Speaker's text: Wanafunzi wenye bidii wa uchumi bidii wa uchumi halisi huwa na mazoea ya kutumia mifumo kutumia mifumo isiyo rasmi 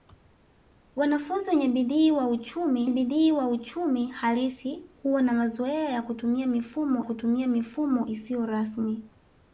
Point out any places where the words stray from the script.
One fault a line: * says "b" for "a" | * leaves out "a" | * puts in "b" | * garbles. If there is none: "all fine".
all fine